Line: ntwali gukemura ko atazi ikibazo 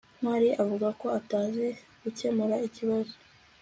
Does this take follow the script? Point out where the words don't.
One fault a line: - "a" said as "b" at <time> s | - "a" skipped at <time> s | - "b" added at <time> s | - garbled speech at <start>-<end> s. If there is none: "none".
- "gukemura" said as "avuga" at 0.6 s
- "gukemura" added at 2.0 s